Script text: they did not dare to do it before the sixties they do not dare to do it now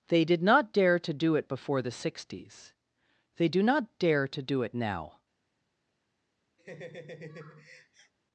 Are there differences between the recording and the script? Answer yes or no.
no